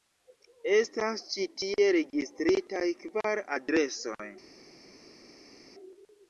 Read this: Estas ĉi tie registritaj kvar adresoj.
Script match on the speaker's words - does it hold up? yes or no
yes